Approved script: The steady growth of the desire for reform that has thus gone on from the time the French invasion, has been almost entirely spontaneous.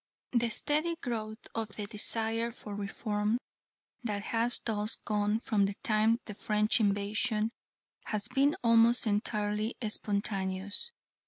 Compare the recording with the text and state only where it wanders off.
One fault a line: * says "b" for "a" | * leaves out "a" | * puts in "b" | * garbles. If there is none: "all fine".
all fine